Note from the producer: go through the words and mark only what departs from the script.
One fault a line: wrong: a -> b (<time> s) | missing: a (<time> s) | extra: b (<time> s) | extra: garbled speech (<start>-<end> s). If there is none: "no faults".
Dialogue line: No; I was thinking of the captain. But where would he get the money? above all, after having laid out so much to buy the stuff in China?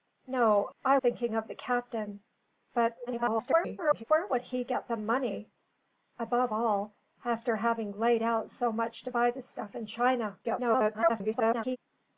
missing: was (1.0 s)
extra: garbled speech (3.1-4.0 s)
extra: garbled speech (10.4-11.8 s)